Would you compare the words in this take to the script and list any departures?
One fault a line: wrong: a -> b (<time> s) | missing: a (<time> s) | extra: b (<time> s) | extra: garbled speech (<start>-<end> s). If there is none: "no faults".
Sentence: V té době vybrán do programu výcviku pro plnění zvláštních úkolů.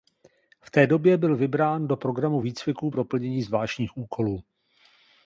extra: byl (1.2 s)